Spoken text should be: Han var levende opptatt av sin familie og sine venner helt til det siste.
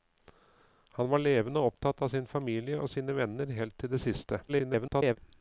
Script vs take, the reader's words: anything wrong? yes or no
yes